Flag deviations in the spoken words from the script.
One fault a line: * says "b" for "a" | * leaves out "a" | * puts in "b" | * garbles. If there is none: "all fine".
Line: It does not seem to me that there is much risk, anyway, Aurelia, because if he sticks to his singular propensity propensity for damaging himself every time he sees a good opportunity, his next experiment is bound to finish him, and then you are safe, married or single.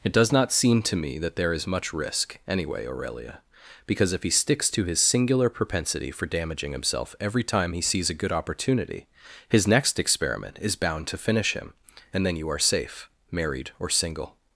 * leaves out "propensity"